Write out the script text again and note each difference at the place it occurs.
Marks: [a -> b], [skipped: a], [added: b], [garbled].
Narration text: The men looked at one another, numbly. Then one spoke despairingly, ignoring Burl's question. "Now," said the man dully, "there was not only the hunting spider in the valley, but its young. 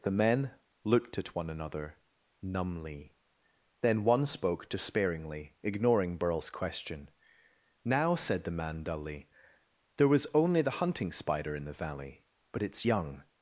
The men looked at one another, numbly. Then one spoke despairingly, ignoring Burl's question. "Now," said the man dully, "there was [skipped: not] only the hunting spider in the valley, but its young.